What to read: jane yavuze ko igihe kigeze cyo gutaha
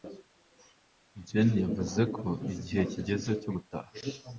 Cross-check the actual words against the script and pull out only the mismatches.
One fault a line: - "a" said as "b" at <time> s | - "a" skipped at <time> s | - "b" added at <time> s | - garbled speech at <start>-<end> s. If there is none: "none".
none